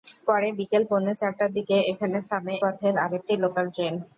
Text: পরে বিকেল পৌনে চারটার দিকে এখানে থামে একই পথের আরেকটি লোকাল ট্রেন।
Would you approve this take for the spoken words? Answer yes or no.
no